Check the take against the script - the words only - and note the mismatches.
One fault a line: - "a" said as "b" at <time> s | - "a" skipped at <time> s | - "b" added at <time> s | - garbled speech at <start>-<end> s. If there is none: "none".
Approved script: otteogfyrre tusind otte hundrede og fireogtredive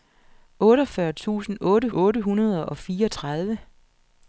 - "otte" added at 1.9 s